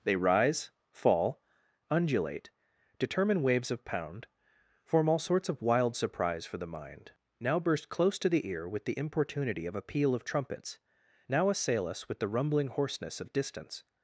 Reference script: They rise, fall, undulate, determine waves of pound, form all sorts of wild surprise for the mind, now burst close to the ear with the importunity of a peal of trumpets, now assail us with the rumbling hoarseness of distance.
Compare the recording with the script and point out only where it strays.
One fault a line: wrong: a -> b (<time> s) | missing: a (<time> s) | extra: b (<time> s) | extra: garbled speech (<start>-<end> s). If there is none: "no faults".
no faults